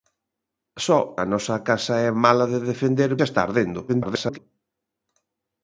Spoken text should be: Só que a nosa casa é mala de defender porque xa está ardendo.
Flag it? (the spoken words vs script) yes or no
yes